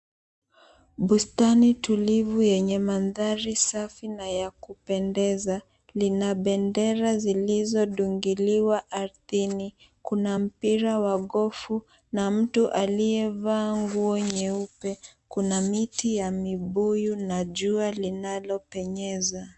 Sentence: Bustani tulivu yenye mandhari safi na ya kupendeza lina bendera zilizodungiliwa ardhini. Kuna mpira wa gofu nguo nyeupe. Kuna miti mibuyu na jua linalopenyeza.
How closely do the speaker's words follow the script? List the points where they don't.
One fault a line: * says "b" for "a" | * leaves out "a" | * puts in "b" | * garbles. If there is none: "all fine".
* puts in "na mtu aliyevaa"
* puts in "ya"